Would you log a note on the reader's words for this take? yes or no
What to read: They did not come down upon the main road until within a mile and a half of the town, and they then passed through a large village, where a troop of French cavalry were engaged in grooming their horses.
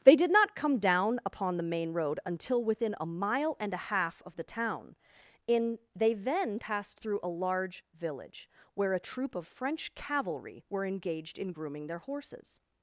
yes